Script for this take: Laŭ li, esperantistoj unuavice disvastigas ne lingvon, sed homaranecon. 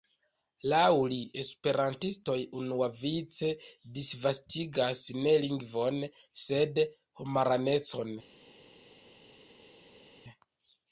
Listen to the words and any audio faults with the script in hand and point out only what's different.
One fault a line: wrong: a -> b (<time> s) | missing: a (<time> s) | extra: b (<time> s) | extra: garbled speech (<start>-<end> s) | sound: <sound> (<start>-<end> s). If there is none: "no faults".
no faults